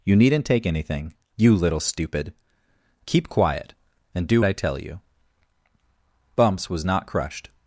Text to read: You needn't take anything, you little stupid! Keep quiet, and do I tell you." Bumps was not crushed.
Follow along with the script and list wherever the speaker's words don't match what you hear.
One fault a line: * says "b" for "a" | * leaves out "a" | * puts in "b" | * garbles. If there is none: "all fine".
all fine